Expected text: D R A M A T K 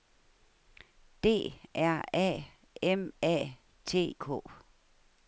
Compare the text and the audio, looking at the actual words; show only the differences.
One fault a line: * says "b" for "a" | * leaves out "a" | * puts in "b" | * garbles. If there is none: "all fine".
all fine